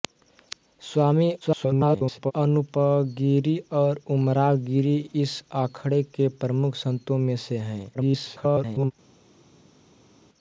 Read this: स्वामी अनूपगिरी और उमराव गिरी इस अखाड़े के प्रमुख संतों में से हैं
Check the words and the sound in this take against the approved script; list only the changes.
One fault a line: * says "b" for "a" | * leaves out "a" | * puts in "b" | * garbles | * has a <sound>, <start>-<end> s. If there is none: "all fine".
* garbles
* garbles